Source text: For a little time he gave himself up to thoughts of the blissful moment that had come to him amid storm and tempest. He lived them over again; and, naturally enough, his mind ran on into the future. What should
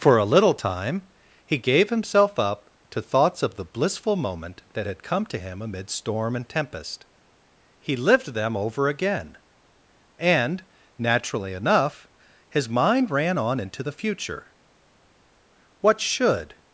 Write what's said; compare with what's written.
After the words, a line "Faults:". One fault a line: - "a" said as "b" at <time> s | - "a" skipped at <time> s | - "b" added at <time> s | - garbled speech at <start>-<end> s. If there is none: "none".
For a little time he gave himself up to thoughts of the blissful moment that had come to him amid storm and tempest. He lived them over again; and, naturally enough, his mind ran on into the future. What should
Faults:
none